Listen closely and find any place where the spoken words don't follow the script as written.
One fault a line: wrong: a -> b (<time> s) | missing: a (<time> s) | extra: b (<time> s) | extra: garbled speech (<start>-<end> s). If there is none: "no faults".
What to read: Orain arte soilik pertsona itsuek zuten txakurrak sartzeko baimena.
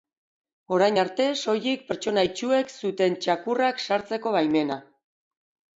no faults